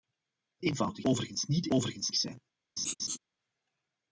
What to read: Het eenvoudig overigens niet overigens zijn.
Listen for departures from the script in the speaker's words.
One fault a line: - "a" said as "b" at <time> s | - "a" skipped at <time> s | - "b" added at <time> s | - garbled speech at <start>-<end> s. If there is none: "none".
none